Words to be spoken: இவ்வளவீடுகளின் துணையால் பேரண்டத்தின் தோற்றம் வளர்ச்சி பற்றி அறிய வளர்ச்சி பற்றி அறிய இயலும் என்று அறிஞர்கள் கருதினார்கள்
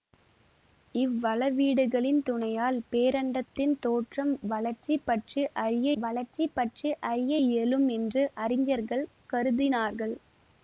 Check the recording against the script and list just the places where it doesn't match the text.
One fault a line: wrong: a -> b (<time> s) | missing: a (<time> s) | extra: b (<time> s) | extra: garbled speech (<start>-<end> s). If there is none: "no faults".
no faults